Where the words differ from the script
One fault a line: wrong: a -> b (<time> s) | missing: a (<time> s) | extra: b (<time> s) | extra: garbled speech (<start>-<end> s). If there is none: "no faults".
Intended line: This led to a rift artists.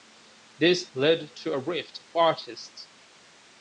no faults